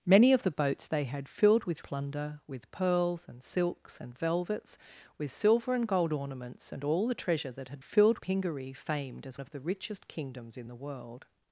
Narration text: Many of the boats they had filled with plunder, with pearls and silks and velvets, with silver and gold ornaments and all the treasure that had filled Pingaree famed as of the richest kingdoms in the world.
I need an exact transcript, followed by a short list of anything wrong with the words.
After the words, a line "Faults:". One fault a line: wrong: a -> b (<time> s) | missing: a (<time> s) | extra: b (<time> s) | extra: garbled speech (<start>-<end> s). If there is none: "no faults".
Many of the boats they had filled with plunder, with pearls and silks and velvets, with silver and gold ornaments and all the treasure that had filled Pingaree famed as of the richest kingdoms in the world.
Faults:
no faults